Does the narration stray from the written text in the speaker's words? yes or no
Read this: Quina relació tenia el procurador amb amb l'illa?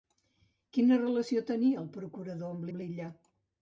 no